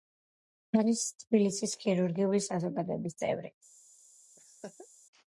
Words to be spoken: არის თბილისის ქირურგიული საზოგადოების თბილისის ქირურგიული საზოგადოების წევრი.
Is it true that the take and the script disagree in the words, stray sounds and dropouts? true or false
true